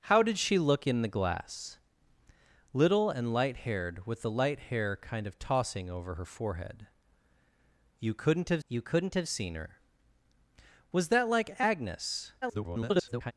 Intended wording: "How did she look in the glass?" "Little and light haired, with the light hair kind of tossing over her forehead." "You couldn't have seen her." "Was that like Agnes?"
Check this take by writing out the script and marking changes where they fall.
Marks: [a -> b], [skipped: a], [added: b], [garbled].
"How did she look in the glass?" "Little and light haired, with the light hair kind of tossing over her forehead." "You couldn't have [added: you couldn't have] seen her." "Was that like Agnes?" [garbled]